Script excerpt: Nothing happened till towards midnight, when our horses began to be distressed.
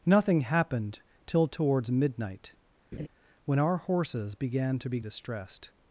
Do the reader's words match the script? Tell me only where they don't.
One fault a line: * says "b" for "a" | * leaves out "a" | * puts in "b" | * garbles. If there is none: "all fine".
all fine